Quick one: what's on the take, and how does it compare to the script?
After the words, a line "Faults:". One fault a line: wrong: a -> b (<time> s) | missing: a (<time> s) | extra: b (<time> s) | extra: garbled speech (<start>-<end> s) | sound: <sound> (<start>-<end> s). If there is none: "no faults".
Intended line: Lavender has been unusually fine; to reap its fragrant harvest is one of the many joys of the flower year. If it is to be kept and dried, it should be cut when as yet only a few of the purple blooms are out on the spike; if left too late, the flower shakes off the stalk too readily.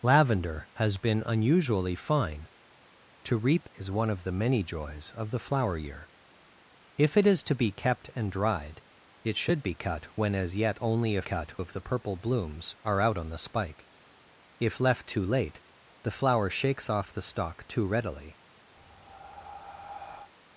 Lavender has been unusually fine; to reap is one of the many joys of the flower year. If it is to be kept and dried, it should be cut when as yet only a cut of the purple blooms are out on the spike; if left too late, the flower shakes off the stalk too readily.
Faults:
missing: its fragrant harvest (3.7 s)
wrong: few -> cut (11.2 s)
sound: breath (18.8-20.3 s)